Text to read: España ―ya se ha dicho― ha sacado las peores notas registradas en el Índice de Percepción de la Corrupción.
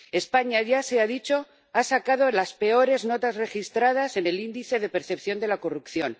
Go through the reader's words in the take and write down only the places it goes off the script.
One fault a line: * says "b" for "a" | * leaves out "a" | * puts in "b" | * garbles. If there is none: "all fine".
all fine